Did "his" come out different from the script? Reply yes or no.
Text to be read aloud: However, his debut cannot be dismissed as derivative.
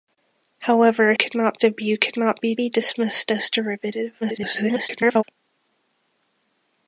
yes